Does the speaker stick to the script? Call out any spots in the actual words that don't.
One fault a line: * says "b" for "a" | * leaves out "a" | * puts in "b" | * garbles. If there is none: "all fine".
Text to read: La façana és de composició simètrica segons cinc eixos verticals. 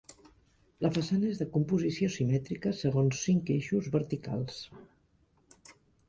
all fine